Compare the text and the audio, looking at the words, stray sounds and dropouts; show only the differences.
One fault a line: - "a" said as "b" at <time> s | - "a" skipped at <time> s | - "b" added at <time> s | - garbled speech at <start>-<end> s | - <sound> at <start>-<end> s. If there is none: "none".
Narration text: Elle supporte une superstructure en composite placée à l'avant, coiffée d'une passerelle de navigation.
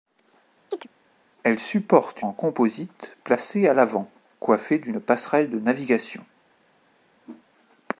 - chirp at 0.7-0.9 s
- "une superstructure" skipped at 2.2 s
- whoosh at 7.2-7.4 s